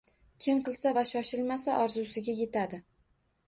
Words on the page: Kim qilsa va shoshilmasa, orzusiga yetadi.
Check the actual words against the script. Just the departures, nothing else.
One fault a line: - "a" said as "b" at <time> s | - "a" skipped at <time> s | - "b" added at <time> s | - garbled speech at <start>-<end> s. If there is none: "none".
none